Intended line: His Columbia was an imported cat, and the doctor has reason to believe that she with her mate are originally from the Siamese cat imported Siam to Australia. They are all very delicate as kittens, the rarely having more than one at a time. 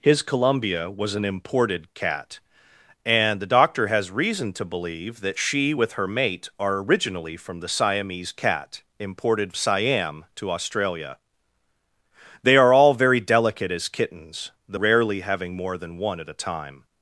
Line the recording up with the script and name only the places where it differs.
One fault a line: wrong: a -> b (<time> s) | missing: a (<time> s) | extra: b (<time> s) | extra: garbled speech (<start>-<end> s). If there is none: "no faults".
no faults